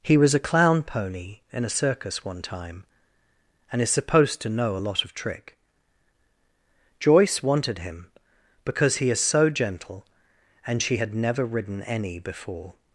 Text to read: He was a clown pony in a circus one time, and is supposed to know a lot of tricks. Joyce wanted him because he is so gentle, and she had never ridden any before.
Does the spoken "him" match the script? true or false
true